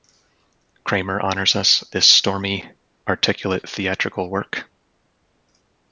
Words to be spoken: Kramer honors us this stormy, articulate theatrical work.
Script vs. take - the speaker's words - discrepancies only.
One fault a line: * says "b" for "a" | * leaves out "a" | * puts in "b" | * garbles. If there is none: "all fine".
all fine